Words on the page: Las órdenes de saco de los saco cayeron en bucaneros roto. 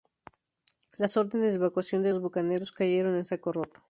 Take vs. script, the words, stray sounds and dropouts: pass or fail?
fail